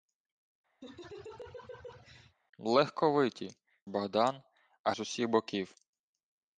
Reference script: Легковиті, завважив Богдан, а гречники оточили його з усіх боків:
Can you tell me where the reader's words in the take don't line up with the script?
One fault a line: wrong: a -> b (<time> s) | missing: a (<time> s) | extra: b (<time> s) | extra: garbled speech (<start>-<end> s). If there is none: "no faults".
missing: завважив (3.6 s)
missing: гречники оточили його (4.9 s)